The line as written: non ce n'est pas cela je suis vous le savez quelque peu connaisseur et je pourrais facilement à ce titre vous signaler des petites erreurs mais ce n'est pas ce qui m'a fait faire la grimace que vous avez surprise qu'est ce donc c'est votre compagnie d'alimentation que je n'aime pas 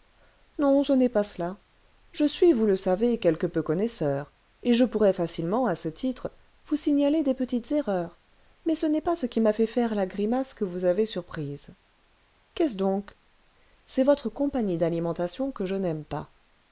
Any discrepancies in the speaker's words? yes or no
no